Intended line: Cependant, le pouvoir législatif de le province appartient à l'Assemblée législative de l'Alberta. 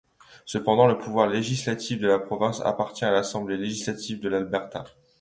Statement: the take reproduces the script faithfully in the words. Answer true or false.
false